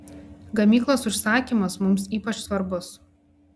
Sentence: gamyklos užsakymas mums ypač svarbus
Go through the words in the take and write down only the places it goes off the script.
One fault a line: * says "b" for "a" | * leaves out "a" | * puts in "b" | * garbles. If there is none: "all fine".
all fine